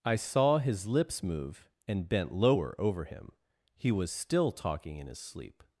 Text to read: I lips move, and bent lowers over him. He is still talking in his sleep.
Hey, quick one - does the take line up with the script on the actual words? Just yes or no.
no